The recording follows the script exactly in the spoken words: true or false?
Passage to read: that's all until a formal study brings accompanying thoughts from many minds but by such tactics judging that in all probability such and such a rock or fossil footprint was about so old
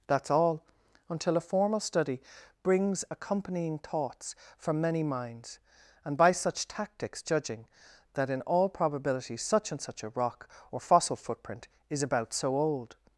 false